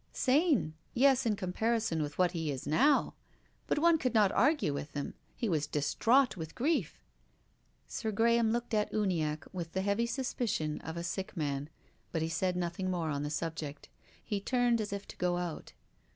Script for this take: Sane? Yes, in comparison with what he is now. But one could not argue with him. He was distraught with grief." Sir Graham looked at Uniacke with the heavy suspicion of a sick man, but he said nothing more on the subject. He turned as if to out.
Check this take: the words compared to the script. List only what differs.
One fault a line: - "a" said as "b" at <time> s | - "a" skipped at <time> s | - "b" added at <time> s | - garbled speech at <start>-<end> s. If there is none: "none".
- "go" added at 15.2 s